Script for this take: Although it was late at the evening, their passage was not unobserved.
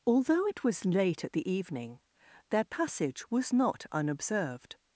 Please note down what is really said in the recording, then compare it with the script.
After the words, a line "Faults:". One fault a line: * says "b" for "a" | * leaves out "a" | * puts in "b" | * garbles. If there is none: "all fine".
Although it was late at the evening, their passage was not unobserved.
Faults:
all fine